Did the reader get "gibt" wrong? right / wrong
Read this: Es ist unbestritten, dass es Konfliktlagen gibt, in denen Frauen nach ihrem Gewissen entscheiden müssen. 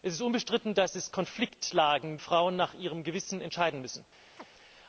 wrong